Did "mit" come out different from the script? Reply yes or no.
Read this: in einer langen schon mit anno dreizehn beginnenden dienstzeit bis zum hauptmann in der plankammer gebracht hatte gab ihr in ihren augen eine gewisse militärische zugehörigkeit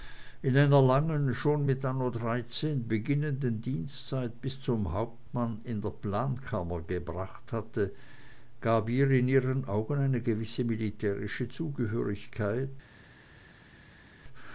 no